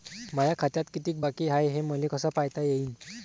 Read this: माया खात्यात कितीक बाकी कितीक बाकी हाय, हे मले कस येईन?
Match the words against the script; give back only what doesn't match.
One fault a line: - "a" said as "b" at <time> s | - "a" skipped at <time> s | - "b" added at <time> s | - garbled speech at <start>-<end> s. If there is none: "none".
- "कितीक बाकी" skipped at 1.5 s
- "पायता" added at 2.4 s